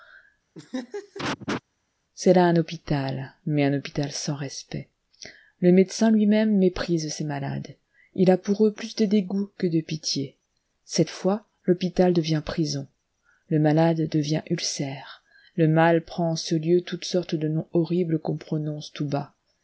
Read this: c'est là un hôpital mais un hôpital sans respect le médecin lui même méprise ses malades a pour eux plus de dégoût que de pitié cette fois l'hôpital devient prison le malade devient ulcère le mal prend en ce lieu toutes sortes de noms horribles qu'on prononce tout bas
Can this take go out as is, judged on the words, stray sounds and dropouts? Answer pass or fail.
fail